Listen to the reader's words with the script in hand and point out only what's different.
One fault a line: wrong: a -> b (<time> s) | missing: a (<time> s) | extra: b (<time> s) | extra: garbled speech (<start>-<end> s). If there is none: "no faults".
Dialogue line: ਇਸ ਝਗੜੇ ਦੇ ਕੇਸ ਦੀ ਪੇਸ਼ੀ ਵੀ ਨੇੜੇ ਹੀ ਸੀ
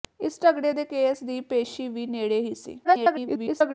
extra: garbled speech (2.8-3.7 s)